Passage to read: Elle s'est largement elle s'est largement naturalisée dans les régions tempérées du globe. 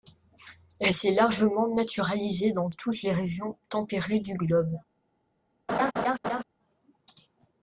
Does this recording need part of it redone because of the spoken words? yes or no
yes